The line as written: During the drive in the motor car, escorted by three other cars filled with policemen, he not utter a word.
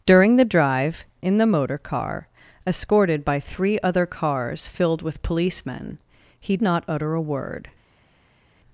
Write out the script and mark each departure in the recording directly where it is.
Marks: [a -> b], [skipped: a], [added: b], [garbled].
During the drive in the motor car, escorted by three other cars filled with policemen, he not utter a word.